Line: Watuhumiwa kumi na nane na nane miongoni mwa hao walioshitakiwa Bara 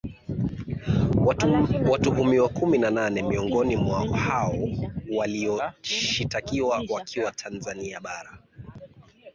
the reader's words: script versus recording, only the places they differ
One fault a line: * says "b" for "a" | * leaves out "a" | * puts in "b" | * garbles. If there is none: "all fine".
* leaves out "na nane"
* puts in "wakiwa Tanzania"